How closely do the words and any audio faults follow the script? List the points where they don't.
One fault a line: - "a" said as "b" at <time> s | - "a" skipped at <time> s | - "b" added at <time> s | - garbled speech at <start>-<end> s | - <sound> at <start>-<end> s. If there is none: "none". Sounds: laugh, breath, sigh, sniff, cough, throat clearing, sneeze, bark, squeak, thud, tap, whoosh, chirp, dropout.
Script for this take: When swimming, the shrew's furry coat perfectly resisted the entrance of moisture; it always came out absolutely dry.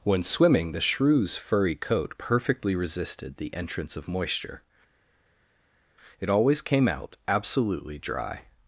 none